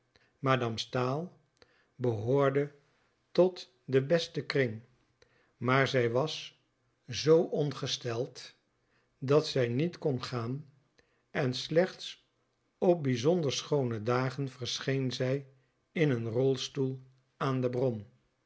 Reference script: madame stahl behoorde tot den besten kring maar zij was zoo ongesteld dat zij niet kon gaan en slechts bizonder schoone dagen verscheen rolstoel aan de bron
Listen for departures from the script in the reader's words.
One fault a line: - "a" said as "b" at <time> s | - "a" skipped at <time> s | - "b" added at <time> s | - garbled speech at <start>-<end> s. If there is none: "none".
- "op" added at 12.8 s
- "zij in een" added at 15.1 s